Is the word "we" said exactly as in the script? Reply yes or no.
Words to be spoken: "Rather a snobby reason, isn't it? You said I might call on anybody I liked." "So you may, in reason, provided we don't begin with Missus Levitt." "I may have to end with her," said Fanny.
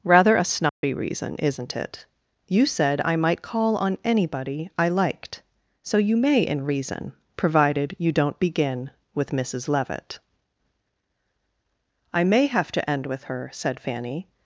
no